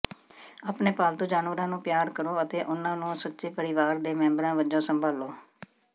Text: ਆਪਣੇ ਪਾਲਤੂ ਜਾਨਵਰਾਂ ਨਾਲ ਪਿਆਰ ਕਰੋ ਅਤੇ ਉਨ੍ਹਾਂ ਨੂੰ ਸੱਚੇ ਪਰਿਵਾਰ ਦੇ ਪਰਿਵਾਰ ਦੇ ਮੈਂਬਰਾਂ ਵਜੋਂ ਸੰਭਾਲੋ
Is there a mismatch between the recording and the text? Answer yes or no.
yes